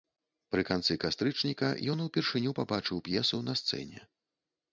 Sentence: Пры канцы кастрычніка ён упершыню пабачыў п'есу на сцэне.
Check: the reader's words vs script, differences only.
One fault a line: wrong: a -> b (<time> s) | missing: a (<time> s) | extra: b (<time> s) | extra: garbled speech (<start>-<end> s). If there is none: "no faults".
no faults